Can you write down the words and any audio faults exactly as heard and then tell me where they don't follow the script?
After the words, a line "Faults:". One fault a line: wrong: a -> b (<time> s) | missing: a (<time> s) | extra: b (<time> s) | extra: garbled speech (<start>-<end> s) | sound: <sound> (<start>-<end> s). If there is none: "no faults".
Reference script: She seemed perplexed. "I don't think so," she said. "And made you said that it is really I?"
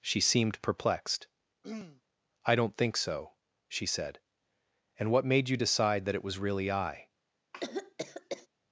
She seemed perplexed. "I don't think so," she said. "And what made you decide that it was really I?"
Faults:
sound: throat clearing (1.6-2.0 s)
extra: what (5.1 s)
wrong: said -> decide (5.6 s)
wrong: is -> was (6.2 s)
sound: cough (7.5-8.5 s)